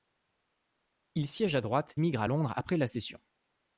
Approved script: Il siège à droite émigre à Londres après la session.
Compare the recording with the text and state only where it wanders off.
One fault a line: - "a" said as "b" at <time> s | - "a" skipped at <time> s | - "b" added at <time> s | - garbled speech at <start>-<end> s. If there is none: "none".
none